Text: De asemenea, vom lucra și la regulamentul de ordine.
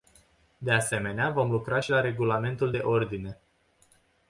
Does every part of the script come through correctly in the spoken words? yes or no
yes